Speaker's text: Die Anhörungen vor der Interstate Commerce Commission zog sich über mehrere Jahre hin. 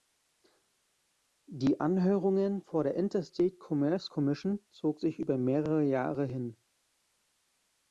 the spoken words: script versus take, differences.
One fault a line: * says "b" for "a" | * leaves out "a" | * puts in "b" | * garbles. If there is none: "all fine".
all fine